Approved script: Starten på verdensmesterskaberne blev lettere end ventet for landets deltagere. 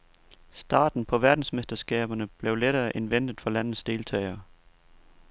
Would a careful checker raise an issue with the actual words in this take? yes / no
no